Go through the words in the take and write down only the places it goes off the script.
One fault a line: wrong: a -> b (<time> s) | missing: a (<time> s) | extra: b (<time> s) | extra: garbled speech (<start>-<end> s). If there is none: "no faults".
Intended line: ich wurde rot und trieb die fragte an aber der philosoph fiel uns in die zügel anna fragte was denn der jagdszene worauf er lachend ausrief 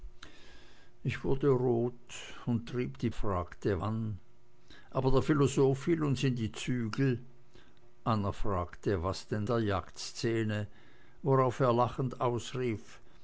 no faults